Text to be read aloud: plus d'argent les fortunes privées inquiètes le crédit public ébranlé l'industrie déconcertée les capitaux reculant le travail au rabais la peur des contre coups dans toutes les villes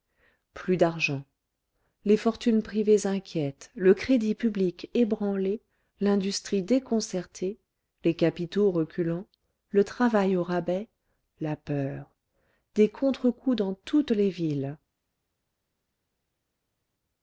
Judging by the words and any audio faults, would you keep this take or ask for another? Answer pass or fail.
pass